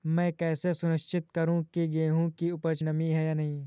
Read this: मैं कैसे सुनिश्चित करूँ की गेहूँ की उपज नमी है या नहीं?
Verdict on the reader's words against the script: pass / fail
pass